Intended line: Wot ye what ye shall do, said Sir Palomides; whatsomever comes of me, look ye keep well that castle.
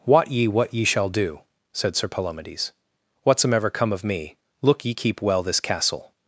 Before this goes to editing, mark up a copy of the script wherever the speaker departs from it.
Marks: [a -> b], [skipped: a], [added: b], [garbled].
Wot ye what ye shall do, said Sir Palomides; whatsomever [comes -> come] of me, look ye keep well [that -> this] castle.